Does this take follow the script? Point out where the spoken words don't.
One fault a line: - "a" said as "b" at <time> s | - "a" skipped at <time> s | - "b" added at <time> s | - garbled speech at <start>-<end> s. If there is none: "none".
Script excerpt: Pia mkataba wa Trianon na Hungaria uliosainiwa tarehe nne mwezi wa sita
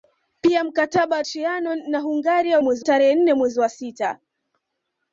- "uliosainiwa" said as "mwezi" at 2.6 s